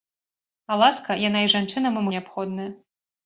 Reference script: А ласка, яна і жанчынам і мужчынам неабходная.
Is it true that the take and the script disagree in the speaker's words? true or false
true